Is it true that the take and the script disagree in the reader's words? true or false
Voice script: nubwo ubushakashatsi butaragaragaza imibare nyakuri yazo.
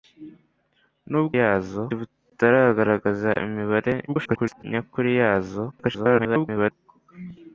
true